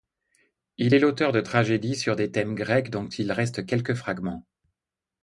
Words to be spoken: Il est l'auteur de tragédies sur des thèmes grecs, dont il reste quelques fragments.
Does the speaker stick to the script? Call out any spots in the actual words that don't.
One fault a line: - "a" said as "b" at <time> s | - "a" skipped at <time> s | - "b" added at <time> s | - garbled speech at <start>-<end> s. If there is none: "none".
none